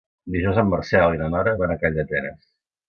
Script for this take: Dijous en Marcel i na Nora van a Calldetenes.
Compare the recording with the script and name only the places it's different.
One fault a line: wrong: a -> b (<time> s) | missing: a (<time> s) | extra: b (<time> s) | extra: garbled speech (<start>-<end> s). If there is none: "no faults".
no faults